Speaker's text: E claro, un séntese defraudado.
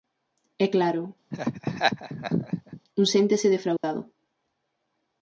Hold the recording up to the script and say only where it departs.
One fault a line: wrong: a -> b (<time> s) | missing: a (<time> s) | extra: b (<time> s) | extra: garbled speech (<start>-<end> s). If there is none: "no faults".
no faults